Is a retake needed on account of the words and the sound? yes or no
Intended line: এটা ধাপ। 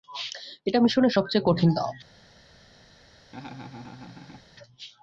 yes